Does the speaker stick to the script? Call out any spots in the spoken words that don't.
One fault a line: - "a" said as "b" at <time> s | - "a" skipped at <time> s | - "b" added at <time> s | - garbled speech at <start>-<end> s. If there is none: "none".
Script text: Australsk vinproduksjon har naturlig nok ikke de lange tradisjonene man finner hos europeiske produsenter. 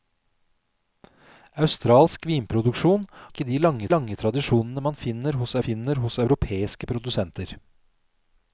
- "har naturlig nok" skipped at 3.0 s
- "lange" added at 4.0 s
- "finner hos" added at 5.7 s